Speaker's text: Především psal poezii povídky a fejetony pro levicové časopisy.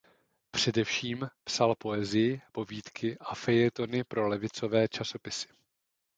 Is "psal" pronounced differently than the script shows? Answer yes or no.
no